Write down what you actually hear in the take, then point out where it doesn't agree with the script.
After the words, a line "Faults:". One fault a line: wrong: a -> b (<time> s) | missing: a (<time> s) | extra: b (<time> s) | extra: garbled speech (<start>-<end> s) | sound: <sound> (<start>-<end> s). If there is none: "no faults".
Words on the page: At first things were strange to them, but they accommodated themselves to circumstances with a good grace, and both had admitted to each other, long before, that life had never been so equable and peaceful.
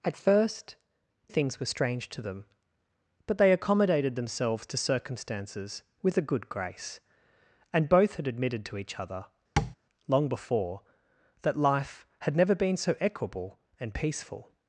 At first things were strange to them, but they accommodated themselves to circumstances with a good grace, and both had admitted to each other, long before, that life had never been so equable and peaceful.
Faults:
sound: tap (9.6-9.8 s)